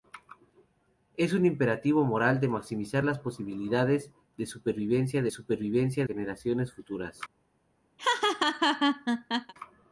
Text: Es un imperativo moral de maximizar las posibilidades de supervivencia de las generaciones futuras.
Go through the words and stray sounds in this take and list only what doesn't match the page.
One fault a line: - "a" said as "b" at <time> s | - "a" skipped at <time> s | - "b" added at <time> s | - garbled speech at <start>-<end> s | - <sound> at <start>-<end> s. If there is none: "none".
- "las" said as "supervivencia" at 5.3 s
- laugh at 8.0-9.5 s